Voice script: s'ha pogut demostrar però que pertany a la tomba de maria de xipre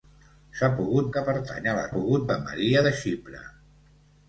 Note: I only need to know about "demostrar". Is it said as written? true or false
false